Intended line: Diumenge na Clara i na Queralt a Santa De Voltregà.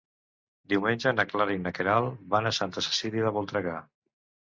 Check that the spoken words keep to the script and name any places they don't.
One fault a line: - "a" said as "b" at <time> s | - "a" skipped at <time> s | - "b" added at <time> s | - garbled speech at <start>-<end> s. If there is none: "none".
- "van" added at 2.3 s
- "Cecília" added at 2.9 s